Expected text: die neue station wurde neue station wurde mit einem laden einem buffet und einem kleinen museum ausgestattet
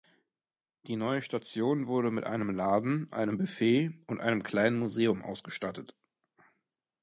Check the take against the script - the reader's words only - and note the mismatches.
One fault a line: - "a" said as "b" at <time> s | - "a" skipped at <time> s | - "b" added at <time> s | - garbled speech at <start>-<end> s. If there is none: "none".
- "neue station wurde" skipped at 2.1 s